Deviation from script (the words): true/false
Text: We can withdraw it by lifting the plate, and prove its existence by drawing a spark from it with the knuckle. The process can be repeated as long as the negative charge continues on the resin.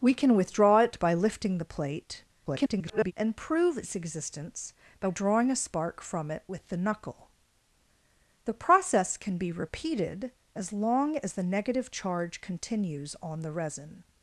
true